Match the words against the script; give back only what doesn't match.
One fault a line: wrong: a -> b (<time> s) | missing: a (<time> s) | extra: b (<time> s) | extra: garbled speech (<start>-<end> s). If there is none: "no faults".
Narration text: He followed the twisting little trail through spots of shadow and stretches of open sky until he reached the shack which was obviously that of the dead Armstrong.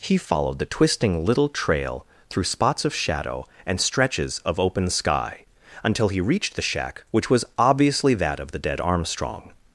no faults